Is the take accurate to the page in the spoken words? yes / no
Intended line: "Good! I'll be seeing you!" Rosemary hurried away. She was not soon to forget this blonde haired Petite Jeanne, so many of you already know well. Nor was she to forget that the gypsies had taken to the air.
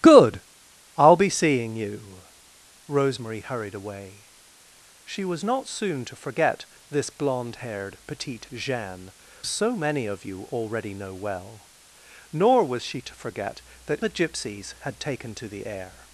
yes